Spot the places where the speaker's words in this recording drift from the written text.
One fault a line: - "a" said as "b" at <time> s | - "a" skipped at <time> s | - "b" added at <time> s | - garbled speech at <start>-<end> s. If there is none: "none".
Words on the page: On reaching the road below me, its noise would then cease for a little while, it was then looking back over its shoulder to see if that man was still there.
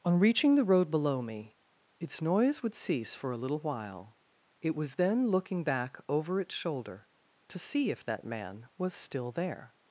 - "then" skipped at 2.7 s